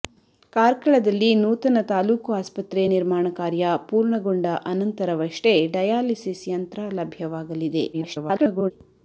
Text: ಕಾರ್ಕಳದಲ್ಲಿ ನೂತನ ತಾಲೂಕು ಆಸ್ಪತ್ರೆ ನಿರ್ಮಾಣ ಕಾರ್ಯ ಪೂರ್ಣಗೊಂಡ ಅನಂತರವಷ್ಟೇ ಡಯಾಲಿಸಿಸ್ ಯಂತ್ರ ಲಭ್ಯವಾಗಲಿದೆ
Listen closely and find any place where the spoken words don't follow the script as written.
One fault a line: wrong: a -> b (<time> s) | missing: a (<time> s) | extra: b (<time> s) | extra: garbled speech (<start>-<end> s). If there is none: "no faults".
extra: garbled speech (7.9-8.7 s)